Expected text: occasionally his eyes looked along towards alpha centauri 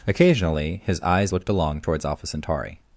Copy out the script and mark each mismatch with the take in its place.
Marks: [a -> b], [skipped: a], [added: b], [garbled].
occasionally his eyes looked along towards alpha centauri